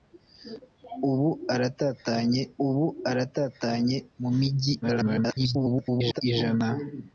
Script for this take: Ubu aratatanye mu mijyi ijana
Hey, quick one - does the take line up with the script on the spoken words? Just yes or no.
no